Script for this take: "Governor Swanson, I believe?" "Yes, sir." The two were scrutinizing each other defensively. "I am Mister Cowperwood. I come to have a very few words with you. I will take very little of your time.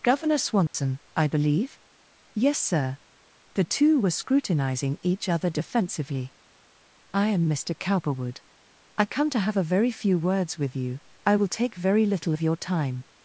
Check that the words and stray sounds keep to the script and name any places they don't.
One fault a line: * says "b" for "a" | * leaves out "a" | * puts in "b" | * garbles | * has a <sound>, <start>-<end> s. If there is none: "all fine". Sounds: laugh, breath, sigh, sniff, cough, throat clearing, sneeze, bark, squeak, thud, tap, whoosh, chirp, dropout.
* has a dropout, 0.7-0.7 s